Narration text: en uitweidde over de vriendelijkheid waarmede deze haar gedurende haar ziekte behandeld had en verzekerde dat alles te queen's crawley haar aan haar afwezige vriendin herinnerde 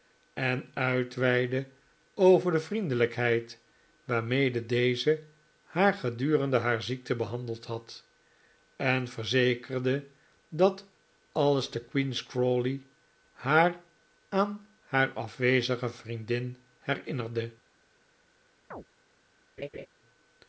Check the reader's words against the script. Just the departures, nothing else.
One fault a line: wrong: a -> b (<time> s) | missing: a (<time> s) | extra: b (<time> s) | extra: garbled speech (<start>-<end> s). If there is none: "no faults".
no faults